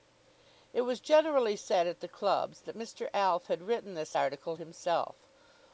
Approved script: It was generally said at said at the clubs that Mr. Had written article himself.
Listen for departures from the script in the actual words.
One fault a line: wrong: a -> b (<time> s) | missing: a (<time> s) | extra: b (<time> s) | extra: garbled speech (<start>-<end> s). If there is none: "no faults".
missing: said at (2.0 s)
extra: Alf (3.1 s)
extra: this (3.9 s)